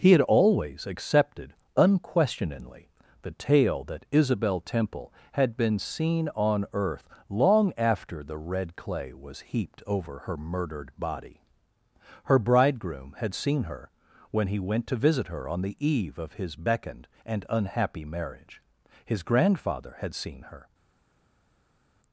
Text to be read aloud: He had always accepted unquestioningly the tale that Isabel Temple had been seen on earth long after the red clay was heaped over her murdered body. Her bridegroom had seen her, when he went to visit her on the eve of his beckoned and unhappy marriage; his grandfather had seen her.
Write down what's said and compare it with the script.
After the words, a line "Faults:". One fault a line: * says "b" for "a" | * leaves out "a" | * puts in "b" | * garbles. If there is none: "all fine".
He had always accepted unquestioningly the tale that Isabel Temple had been seen on earth long after the red clay was heaped over her murdered body. Her bridegroom had seen her, when he went to visit her on the eve of his beckoned and unhappy marriage; his grandfather had seen her.
Faults:
all fine